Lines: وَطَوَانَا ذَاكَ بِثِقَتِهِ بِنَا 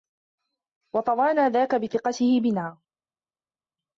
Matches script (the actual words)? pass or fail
pass